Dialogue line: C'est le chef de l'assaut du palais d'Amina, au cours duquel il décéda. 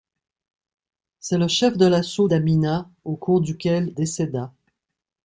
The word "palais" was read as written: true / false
false